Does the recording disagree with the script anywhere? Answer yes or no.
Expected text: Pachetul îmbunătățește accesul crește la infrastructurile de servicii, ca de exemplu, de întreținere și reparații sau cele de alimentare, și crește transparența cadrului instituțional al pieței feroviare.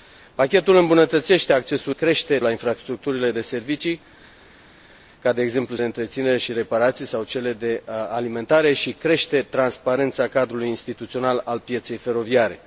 no